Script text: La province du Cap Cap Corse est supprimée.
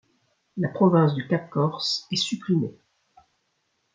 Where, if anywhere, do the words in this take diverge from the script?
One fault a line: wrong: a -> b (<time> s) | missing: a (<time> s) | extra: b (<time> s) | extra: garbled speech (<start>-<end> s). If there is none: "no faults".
missing: Cap (1.5 s)